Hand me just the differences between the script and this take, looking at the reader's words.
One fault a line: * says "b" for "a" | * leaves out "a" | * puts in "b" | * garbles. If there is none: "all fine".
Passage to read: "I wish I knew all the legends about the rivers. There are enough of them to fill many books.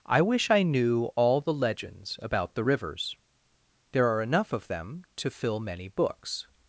all fine